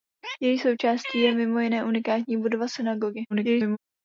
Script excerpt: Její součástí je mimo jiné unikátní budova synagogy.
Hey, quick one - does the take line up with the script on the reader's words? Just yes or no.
no